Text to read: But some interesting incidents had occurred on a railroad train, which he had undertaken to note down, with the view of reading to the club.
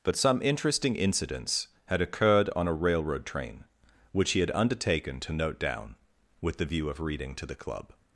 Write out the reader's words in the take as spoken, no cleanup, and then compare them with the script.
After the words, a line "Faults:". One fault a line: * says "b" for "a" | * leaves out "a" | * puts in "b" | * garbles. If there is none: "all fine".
But some interesting incidents had occurred on a railroad train, which he had undertaken to note down, with the view of reading to the club.
Faults:
all fine